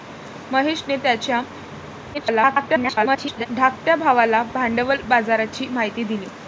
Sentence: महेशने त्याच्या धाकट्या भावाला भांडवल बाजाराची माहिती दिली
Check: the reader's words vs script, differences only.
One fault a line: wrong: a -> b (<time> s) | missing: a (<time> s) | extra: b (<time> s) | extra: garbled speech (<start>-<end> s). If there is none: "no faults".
extra: garbled speech (2.1-3.5 s)